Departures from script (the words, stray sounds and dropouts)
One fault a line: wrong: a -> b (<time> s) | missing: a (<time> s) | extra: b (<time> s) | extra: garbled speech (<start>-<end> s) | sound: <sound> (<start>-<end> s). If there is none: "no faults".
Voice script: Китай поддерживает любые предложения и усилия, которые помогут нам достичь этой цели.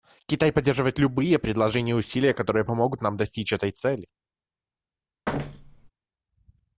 sound: thud (5.3-5.9 s)